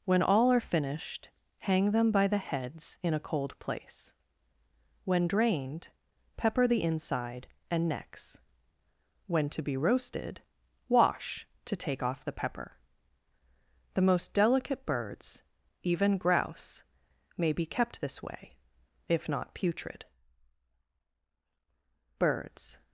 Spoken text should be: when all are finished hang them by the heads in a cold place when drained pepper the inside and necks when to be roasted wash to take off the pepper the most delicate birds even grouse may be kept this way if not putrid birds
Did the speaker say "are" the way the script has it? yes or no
yes